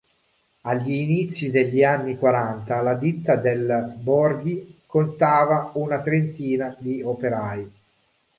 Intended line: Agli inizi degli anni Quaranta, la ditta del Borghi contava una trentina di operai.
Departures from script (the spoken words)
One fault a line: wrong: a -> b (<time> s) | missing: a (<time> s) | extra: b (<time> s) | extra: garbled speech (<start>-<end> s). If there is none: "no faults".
no faults